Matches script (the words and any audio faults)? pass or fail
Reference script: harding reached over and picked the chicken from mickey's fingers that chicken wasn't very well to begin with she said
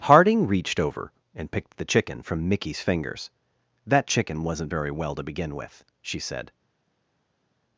pass